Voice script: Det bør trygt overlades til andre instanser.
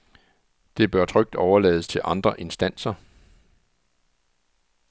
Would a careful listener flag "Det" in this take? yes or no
no